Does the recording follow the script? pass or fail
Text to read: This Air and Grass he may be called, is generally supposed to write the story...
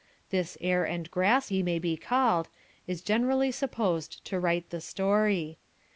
pass